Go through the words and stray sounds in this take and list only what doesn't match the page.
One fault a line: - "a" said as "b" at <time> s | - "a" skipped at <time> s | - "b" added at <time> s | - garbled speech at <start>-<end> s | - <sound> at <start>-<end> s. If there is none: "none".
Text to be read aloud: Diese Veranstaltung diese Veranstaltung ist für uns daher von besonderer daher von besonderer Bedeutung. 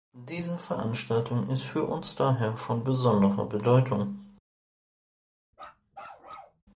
- "diese Veranstaltung" skipped at 1.5 s
- "daher von besonderer" skipped at 3.5 s
- bark at 5.5-6.6 s